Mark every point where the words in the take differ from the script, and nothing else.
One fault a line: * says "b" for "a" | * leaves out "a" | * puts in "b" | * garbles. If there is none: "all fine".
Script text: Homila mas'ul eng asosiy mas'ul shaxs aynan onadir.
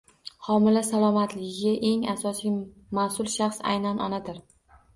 * says "salomatligiga" for "mas'ul"